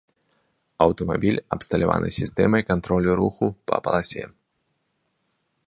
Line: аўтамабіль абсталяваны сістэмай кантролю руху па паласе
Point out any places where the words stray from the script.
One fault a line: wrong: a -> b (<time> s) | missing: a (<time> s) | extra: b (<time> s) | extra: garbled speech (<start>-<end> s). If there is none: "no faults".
no faults